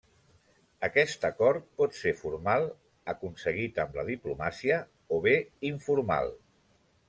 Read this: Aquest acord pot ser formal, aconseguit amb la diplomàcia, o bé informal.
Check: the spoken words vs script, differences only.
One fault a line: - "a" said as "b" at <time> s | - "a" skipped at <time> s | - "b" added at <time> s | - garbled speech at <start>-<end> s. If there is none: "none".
none